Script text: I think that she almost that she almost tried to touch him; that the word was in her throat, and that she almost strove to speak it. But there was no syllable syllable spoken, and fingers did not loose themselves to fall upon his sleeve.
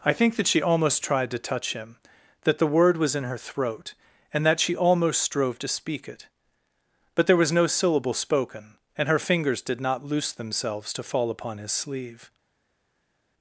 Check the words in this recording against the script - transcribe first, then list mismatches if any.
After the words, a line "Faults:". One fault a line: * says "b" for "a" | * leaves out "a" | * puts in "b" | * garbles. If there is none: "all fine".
I think that she almost tried to touch him; that the word was in her throat, and that she almost strove to speak it. But there was no syllable spoken, and her fingers did not loose themselves to fall upon his sleeve.
Faults:
* leaves out "that she almost"
* leaves out "syllable"
* puts in "her"